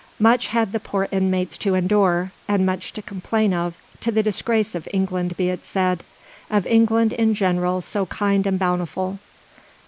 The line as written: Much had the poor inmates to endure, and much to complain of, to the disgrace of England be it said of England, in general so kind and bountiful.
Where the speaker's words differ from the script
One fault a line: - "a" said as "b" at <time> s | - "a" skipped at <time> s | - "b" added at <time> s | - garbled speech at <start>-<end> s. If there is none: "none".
none